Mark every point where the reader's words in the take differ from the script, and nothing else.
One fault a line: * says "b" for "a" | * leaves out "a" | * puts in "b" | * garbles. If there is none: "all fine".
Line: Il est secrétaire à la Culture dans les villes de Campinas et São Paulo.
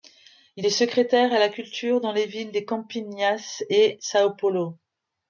all fine